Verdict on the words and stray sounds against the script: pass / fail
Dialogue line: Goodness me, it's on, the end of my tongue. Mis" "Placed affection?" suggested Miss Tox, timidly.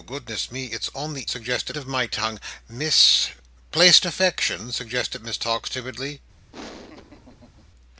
fail